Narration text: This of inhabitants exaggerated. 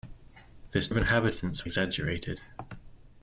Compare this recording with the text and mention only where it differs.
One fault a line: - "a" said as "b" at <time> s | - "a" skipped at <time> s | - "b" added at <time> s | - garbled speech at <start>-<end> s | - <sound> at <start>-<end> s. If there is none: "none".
none